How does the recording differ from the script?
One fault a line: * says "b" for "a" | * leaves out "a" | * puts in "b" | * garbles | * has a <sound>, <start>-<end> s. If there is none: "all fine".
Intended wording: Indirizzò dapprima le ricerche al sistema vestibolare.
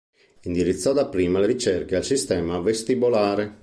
all fine